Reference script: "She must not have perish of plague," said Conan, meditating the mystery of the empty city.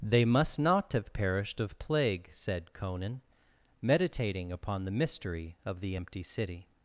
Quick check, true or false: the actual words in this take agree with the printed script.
false